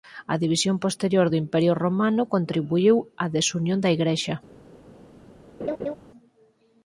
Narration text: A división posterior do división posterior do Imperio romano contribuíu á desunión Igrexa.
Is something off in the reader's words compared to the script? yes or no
yes